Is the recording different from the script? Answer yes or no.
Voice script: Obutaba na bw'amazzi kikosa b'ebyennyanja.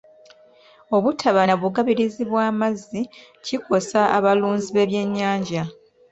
yes